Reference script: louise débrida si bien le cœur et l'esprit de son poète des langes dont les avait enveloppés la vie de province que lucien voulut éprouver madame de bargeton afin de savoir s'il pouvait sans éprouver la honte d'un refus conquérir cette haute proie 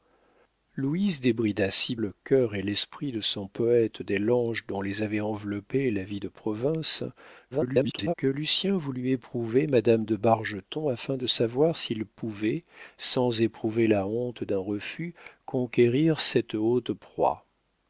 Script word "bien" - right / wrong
wrong